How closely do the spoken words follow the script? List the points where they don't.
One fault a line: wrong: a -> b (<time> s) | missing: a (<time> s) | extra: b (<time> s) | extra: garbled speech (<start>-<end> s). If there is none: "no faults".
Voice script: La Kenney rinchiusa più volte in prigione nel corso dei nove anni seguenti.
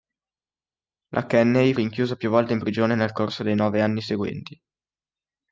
no faults